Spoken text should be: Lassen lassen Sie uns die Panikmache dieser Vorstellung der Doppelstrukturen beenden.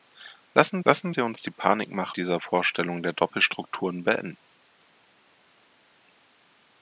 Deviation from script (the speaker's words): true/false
false